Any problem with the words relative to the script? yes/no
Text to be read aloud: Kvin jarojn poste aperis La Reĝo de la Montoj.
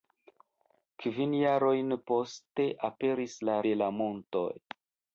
yes